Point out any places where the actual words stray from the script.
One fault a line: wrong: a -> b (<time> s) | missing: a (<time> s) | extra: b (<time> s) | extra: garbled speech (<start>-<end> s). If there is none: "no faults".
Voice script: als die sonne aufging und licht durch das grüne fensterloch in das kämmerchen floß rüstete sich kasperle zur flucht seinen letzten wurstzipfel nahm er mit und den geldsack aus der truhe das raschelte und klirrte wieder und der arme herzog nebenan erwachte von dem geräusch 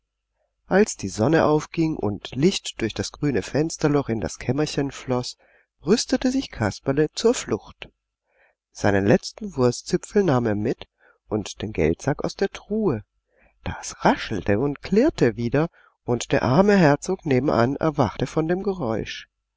no faults